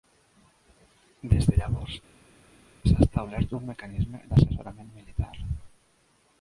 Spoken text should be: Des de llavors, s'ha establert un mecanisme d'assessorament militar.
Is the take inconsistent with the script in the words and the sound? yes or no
no